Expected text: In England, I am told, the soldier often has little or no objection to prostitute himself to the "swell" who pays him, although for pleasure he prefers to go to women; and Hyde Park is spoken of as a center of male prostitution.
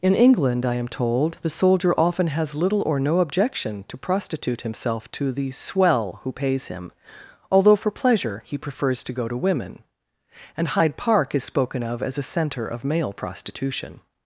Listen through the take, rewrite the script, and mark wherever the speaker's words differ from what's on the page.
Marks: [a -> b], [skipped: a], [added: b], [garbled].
In England, I am told, the soldier often has little or no objection to prostitute himself to the "swell" who pays him, although for pleasure he prefers to go to women; and Hyde Park is spoken of as a center of male prostitution.